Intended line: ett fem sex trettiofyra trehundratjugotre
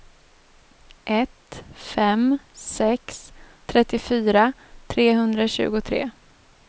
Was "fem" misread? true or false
false